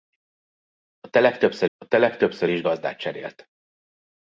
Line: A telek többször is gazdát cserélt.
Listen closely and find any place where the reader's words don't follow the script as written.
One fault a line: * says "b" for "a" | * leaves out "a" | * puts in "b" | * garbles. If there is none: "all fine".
* puts in "a telek többször"